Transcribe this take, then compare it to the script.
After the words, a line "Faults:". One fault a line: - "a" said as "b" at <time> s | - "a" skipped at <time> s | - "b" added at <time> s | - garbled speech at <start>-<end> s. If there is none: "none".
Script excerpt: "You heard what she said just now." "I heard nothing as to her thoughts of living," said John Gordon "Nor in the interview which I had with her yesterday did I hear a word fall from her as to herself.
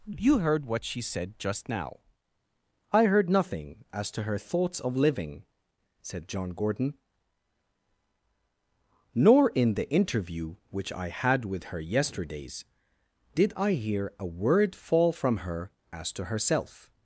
"You heard what she said just now." "I heard nothing as to her thoughts of living," said John Gordon "Nor in the interview which I had with her yesterdays did I hear a word fall from her as to herself.
Faults:
- "yesterday" said as "yesterdays" at 11.8 s